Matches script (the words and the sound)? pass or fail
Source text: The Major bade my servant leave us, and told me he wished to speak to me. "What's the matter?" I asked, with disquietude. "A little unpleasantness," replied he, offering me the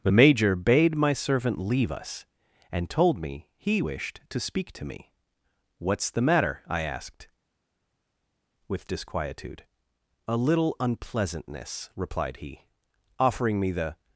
pass